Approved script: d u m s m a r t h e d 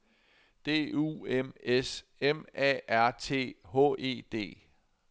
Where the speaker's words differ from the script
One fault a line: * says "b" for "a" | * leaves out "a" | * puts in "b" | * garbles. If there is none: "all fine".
all fine